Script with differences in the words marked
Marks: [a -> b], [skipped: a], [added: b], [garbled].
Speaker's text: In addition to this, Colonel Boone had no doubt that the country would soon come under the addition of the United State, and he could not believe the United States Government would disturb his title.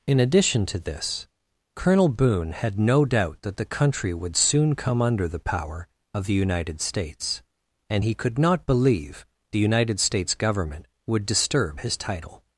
In addition to this, Colonel Boone had no doubt that the country would soon come under the [addition -> power] of the United [State, -> States] and he could not believe the United States Government would disturb his title.